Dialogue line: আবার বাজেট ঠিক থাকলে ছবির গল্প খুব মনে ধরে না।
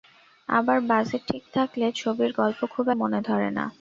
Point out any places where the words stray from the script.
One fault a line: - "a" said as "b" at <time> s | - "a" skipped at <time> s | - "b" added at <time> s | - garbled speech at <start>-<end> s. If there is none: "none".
none